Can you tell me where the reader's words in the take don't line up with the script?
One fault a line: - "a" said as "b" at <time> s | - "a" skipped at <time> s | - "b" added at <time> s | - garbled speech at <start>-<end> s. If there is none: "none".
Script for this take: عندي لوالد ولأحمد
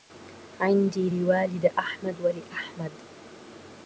- "أحمد" added at 1.7 s